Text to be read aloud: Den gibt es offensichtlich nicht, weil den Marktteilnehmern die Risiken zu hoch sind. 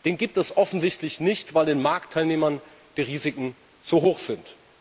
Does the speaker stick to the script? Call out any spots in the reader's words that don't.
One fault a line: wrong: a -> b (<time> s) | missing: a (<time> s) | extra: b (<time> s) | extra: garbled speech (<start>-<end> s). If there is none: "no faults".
no faults